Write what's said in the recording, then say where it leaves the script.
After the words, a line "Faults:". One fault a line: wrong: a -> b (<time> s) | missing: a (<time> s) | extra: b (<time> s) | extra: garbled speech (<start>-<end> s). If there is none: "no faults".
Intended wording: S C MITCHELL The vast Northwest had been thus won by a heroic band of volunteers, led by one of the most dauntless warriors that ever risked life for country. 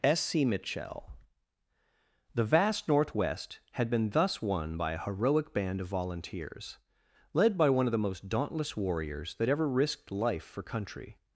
S C MITCHELL The vast Northwest had been thus won by a heroic band of volunteers, led by one of the most dauntless warriors that ever risked life for country.
Faults:
no faults